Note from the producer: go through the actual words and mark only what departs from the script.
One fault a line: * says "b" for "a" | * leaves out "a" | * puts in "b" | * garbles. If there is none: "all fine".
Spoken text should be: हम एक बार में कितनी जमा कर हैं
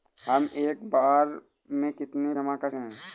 all fine